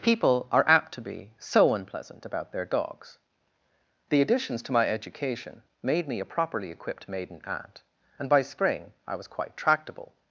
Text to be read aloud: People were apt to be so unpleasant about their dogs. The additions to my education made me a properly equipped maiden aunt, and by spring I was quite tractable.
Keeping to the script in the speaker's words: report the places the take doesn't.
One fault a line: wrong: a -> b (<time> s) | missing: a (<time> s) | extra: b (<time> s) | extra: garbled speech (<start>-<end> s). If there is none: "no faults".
wrong: were -> are (0.5 s)